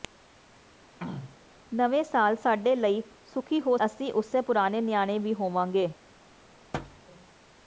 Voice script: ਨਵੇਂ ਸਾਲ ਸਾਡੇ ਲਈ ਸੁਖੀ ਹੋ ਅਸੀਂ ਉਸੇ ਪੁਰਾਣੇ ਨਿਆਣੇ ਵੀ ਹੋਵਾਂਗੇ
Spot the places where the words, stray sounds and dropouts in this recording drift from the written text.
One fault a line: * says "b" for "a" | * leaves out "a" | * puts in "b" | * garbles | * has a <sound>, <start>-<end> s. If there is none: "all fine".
* has a throat clearing, 1.0-1.4 s
* has a thud, 6.7-7.0 s